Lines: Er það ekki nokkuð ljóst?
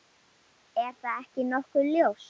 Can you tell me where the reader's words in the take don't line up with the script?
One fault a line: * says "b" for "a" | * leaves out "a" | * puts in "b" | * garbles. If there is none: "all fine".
all fine